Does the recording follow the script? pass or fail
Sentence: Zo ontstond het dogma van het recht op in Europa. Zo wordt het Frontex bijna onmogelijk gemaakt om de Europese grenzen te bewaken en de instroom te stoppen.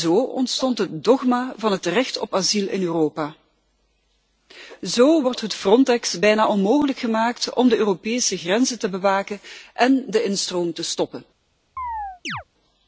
fail